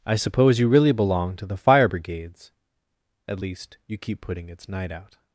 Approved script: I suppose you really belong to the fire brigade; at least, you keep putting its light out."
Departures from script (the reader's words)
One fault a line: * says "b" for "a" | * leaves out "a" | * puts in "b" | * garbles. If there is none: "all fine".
* says "brigades" for "brigade"
* says "night" for "light"